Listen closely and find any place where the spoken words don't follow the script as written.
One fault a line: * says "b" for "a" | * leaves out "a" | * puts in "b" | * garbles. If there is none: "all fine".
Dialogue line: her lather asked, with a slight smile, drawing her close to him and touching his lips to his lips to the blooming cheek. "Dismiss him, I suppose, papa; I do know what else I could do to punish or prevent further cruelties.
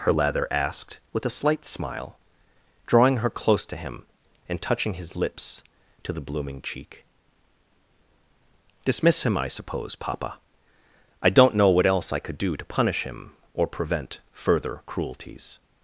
* leaves out "his lips to"
* says "don't" for "do"
* puts in "him"